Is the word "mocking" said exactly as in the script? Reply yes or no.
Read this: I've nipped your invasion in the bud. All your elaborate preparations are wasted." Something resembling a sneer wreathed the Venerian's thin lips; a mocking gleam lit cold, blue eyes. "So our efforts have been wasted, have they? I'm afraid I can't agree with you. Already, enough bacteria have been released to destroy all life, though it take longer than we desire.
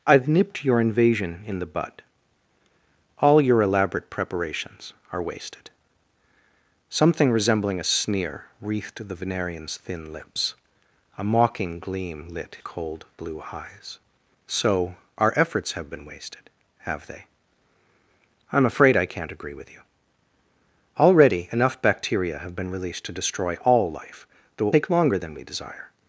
yes